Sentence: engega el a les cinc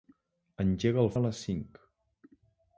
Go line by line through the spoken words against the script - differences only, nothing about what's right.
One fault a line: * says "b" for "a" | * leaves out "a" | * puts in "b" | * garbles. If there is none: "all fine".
all fine